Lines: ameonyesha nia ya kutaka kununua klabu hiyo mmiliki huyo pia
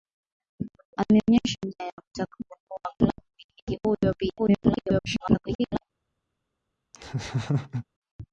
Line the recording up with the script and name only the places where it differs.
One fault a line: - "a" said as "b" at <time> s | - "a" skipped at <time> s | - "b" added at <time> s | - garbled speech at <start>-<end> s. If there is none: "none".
- "hiyo" skipped at 3.2 s
- garbled speech at 4.4-5.8 s